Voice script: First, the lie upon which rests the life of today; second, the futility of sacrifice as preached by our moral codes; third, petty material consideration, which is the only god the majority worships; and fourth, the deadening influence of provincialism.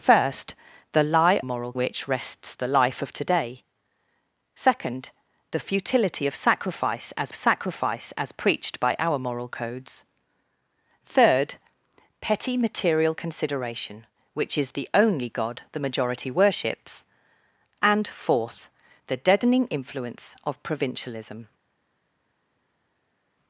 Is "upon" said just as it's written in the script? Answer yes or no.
no